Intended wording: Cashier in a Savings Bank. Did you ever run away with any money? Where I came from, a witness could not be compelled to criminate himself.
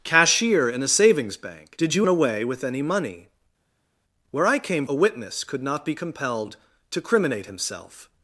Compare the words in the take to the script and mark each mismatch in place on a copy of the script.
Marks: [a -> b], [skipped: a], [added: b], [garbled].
Cashier in a Savings Bank. Did you [skipped: ever run] away with any money? Where I came [skipped: from,] a witness could not be compelled to criminate himself.